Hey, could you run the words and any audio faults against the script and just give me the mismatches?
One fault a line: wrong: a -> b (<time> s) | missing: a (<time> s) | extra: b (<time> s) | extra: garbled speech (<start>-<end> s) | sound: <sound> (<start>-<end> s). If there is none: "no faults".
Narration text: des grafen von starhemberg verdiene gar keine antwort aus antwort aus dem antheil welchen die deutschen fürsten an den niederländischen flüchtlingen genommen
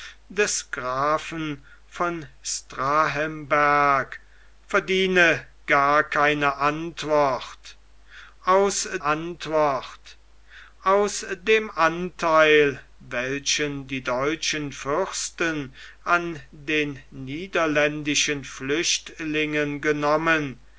no faults